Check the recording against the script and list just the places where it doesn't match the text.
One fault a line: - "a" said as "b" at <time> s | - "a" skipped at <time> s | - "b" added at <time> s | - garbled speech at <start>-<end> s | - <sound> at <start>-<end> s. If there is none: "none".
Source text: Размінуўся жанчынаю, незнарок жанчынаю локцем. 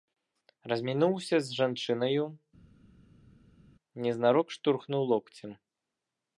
- "з" added at 1.5 s
- "жанчынаю" said as "штурхнуў" at 4.6 s